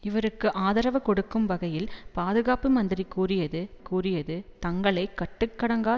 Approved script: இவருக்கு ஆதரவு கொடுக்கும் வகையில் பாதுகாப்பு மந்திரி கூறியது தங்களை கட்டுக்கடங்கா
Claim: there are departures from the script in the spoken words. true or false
true